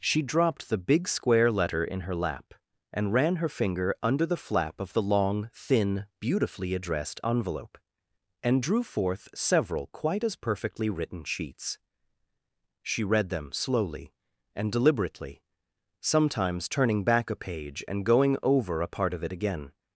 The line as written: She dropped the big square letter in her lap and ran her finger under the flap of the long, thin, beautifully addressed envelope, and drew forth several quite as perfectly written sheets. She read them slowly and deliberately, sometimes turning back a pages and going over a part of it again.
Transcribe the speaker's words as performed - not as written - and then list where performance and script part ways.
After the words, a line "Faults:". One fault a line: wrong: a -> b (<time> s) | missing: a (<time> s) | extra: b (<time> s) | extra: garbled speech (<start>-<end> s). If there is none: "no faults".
She dropped the big square letter in her lap and ran her finger under the flap of the long, thin, beautifully addressed envelope, and drew forth several quite as perfectly written sheets. She read them slowly and deliberately, sometimes turning back a page and going over a part of it again.
Faults:
wrong: pages -> page (17.4 s)